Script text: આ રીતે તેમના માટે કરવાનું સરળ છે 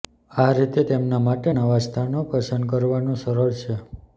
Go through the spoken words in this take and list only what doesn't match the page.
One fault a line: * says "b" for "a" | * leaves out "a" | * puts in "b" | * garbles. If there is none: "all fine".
* puts in "નવા સ્થાનો પસંદ"